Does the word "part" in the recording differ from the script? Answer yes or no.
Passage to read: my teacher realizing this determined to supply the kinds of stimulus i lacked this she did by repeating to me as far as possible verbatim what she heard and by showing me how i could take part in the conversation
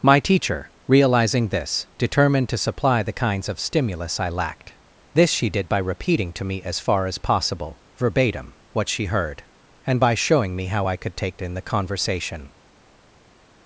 yes